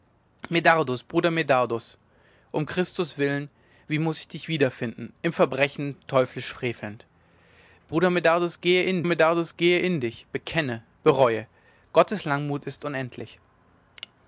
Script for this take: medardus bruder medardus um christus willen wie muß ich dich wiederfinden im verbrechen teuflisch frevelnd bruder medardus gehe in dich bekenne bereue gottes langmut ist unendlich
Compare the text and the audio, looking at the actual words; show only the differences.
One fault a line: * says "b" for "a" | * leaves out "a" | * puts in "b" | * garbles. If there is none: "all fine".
* puts in "medardus gehe in"